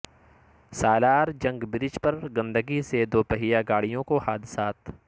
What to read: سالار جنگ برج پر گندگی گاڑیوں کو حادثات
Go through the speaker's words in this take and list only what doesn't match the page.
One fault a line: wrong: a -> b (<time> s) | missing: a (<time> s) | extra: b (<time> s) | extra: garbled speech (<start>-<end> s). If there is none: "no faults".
extra: سے دوپہئیہ (2.8 s)